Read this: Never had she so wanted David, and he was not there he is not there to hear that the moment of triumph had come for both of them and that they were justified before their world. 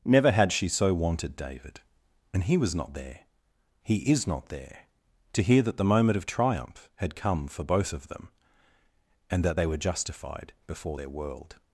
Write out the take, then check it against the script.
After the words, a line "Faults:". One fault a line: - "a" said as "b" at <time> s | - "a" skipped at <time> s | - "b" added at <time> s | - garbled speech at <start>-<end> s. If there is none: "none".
Never had she so wanted David, and he was not there he is not there to hear that the moment of triumph had come for both of them and that they were justified before their world.
Faults:
none